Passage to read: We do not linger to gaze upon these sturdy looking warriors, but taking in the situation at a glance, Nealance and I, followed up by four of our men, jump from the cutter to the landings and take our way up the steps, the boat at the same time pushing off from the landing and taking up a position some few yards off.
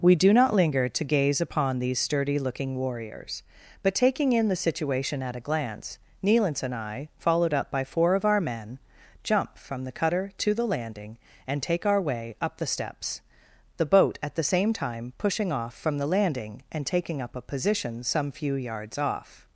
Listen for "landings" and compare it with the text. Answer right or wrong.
wrong